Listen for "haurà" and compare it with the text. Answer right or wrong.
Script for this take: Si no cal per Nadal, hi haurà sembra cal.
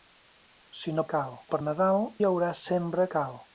right